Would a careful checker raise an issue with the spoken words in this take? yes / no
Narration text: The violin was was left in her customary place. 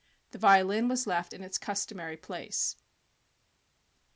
yes